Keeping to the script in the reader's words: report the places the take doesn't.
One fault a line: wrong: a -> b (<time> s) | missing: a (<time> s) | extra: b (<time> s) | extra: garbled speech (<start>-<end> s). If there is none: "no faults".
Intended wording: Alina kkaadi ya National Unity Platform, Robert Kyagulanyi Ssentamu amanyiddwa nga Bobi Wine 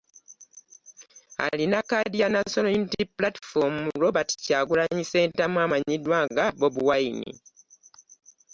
no faults